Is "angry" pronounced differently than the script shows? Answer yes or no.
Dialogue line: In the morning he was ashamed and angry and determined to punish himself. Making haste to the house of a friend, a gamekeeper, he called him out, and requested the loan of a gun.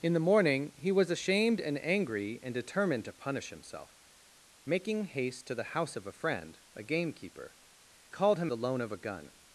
no